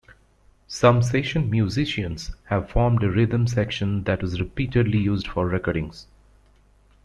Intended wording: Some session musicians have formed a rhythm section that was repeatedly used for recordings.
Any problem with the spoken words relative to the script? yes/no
no